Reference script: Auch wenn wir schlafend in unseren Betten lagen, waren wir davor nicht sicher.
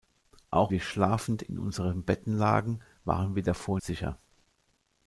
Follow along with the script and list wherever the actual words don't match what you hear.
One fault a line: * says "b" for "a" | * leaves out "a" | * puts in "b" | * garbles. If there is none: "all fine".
* leaves out "wenn"
* leaves out "nicht"